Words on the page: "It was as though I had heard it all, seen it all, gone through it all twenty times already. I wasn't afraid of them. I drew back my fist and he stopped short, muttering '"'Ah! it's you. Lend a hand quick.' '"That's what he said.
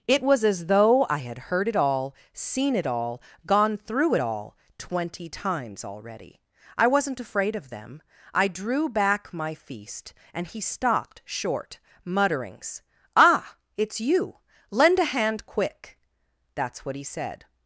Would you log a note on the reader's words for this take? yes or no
yes